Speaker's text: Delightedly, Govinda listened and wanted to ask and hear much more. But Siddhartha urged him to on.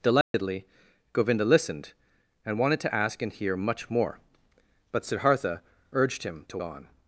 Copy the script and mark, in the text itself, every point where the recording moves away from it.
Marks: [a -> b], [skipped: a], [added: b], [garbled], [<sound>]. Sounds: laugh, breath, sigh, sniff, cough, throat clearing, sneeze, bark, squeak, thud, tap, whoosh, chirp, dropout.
Delightedly, [dropout] Govinda listened and wanted to ask and hear much more. But Siddhartha urged him to on.